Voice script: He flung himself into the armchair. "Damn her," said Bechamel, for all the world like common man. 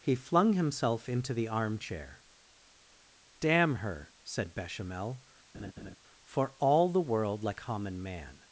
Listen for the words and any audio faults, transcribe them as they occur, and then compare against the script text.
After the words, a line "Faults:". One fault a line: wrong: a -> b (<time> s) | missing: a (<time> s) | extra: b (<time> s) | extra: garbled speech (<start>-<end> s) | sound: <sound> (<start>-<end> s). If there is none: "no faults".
He flung himself into the armchair. "Damn her," said Bechamel, for all the world like common man.
Faults:
sound: laugh (5.5-6.0 s)